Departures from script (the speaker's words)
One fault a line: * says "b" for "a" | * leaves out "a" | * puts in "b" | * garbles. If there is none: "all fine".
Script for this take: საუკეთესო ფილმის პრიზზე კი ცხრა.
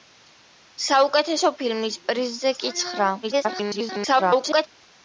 * garbles